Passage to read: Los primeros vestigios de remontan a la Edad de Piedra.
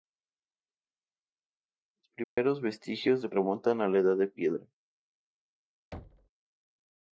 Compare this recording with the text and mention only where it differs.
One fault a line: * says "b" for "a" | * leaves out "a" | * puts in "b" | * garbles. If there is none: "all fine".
all fine